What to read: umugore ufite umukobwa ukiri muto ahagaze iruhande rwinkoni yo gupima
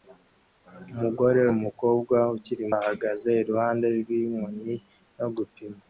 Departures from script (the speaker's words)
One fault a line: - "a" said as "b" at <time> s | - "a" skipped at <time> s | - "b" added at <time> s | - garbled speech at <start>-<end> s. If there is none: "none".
- "ufite" skipped at 1.4 s
- "muto" skipped at 2.6 s